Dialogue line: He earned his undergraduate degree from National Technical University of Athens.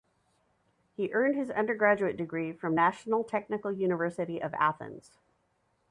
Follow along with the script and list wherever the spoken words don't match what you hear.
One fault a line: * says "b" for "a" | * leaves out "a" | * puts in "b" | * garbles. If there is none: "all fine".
all fine